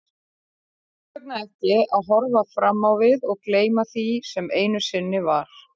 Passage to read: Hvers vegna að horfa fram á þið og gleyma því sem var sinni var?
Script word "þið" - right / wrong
wrong